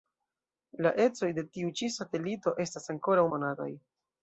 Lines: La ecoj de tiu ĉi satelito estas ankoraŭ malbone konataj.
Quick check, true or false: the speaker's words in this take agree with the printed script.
false